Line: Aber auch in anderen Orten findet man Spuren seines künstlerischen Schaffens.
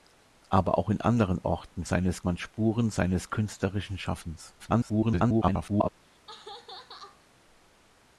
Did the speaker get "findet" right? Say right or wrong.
wrong